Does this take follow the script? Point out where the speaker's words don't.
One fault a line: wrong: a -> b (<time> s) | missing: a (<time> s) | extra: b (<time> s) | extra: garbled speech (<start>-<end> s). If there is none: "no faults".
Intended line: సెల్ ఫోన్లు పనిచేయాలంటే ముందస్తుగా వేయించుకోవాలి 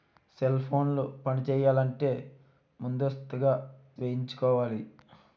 no faults